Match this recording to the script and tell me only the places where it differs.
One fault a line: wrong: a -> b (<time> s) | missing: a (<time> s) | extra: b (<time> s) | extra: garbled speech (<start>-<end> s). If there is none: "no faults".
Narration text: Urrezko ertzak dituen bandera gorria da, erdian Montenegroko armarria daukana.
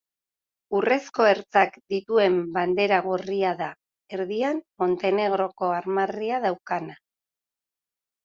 no faults